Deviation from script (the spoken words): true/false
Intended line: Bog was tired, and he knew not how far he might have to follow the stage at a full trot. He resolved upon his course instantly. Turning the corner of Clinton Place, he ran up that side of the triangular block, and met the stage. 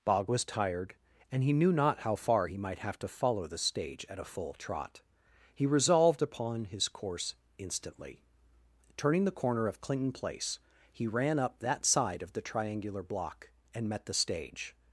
false